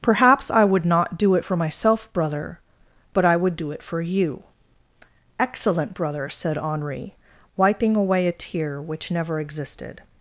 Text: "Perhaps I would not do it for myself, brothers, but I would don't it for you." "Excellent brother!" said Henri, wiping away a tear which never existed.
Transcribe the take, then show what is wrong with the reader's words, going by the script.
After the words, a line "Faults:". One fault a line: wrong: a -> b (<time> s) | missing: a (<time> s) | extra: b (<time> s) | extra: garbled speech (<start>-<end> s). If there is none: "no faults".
"Perhaps I would not do it for myself, brother, but I would do it for you." "Excellent brother!" said Henri, wiping away a tear which never existed.
Faults:
wrong: brothers -> brother (2.1 s)
wrong: don't -> do (3.6 s)